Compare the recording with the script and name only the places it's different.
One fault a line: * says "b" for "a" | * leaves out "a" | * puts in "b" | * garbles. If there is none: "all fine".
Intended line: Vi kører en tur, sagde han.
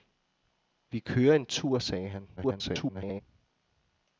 * garbles